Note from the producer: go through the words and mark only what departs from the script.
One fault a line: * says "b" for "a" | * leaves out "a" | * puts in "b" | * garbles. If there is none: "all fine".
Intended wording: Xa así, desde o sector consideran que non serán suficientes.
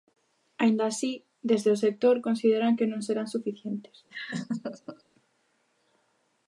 * says "Aínda" for "Xa"